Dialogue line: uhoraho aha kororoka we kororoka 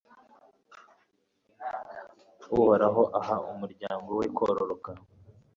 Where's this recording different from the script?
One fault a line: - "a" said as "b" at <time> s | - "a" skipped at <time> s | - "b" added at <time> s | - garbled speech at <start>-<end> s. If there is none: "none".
- "kororoka" said as "umuryango" at 3.5 s